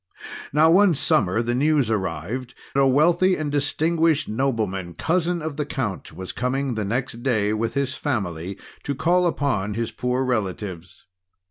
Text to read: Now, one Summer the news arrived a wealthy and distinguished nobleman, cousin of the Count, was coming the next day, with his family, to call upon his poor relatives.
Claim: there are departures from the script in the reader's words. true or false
false